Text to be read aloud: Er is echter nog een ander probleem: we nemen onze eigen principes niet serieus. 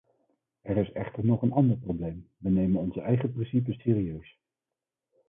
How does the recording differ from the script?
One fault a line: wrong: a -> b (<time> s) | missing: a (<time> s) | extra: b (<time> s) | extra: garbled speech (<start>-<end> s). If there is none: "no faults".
missing: niet (3.8 s)